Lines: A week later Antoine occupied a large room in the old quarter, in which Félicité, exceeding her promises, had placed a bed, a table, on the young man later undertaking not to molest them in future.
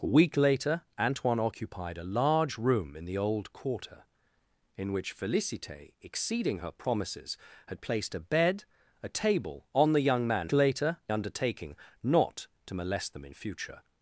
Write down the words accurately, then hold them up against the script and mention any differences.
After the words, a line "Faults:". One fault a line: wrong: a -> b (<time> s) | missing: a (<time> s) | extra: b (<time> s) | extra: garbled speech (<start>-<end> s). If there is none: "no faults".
A week later Antoine occupied a large room in the old quarter, in which Félicité, exceeding her promises, had placed a bed, a table, on the young man later undertaking not to molest them in future.
Faults:
no faults